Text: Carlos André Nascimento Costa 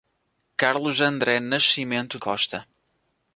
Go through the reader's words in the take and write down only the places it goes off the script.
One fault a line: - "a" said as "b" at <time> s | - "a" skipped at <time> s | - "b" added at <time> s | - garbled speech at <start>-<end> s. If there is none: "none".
none